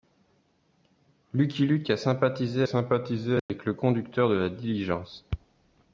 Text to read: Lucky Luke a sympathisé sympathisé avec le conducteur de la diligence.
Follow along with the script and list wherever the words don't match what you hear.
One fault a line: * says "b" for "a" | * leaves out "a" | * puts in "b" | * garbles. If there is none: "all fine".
all fine